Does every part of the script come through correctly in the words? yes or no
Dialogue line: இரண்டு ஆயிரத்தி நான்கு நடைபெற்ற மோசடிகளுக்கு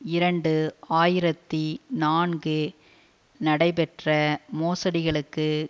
yes